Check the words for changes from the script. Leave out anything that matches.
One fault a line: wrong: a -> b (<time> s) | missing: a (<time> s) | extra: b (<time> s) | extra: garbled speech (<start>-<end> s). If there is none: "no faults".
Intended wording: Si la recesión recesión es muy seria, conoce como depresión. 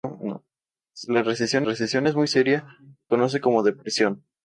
no faults